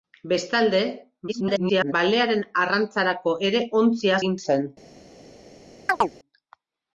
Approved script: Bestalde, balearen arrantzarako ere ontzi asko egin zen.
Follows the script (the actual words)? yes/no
no